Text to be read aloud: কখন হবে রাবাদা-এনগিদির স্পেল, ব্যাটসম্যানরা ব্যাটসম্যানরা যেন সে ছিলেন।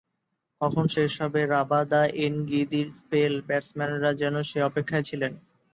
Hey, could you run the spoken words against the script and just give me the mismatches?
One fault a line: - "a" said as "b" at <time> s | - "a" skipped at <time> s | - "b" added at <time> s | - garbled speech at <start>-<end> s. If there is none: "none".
- "শেষ" added at 0.9 s
- "ব্যাটসম্যানরা" skipped at 4.1 s
- "অপেক্ষায়" added at 4.6 s